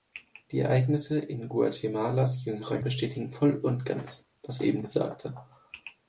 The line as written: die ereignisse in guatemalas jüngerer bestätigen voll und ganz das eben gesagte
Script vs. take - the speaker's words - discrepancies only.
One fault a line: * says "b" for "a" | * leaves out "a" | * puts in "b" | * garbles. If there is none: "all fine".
all fine